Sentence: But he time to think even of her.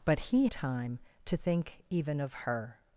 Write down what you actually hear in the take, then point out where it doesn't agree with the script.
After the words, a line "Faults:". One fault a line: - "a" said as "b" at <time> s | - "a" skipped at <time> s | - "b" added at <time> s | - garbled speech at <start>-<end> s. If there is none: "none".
But he time to think even of her.
Faults:
none